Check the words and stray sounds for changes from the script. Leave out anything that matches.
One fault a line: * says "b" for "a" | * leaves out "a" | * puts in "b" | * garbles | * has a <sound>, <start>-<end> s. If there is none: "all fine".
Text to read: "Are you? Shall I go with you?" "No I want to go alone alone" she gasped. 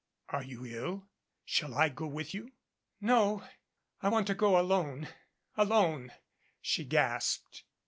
* puts in "ill"